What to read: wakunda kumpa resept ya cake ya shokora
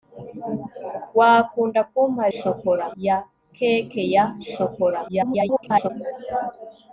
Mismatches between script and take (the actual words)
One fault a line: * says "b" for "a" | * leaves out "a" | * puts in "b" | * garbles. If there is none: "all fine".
* says "shokora" for "resept"
* garbles